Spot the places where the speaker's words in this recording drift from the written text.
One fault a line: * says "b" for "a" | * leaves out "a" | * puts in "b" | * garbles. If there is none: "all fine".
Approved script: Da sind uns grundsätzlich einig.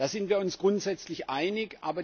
* puts in "wir"